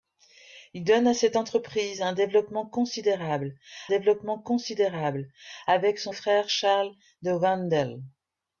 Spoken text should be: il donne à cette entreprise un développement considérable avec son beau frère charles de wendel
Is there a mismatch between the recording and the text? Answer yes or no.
yes